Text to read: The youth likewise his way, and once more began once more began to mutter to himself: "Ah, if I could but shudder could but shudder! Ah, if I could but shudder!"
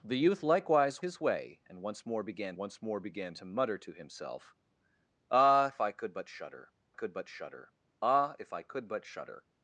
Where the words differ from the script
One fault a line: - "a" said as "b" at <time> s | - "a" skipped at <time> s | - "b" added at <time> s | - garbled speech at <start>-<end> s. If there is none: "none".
none